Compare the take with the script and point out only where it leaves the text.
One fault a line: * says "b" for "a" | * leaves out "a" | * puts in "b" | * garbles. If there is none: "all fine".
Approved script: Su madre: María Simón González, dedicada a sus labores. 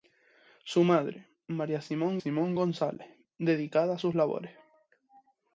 * puts in "Simón"